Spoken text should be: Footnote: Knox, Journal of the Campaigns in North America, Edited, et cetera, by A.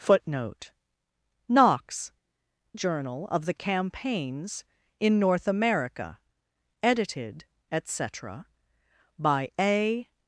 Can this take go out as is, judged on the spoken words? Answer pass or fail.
pass